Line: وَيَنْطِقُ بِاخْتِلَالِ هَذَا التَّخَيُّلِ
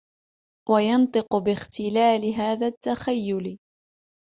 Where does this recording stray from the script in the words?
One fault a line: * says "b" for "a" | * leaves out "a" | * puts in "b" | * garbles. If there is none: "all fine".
all fine